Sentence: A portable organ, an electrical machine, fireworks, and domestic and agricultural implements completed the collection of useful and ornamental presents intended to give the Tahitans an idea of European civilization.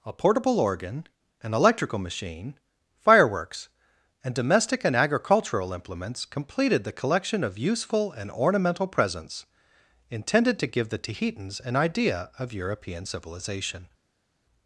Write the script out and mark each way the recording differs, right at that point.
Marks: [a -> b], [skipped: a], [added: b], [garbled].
A portable organ, an electrical machine, fireworks, and domestic and agricultural implements completed the collection of useful and ornamental presents intended to give the Tahitans an idea of European civilization.